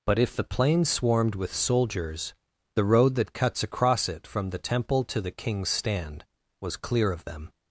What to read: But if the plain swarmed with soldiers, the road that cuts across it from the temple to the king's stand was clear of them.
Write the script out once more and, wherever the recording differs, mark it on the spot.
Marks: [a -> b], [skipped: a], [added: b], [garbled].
But if the plain swarmed with soldiers, the road that cuts across it from the temple to the king's stand was clear of them.